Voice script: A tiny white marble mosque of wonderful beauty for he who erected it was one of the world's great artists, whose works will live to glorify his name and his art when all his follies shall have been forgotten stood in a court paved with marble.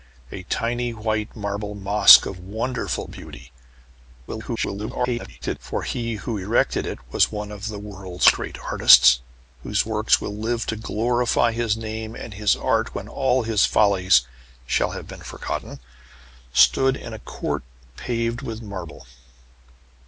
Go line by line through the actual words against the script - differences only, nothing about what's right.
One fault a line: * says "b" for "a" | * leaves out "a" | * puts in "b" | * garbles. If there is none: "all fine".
* garbles